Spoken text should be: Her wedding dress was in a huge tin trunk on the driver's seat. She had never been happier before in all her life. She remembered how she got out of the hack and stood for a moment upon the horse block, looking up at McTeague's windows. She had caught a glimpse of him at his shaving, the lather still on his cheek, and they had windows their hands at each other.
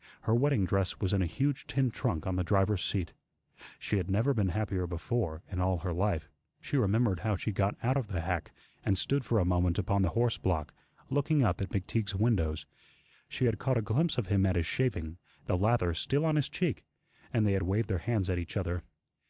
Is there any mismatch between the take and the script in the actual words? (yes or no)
yes